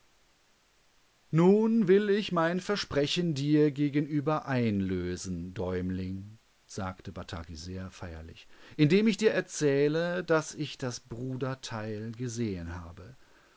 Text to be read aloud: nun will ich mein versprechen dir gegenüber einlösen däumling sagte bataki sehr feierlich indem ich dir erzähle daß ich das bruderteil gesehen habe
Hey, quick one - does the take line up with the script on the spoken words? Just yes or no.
yes